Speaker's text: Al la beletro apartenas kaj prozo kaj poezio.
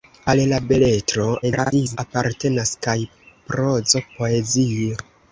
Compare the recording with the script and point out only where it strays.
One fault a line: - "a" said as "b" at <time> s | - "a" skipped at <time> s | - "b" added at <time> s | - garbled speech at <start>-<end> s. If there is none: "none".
- garbled speech at 1.4-2.0 s
- "kaj" skipped at 4.1 s